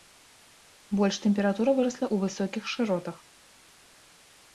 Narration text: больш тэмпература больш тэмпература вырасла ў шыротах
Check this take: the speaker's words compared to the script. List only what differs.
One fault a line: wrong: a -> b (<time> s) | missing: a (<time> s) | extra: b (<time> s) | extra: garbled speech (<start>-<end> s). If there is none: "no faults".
missing: больш тэмпература (1.8 s)
extra: высокіх (2.3 s)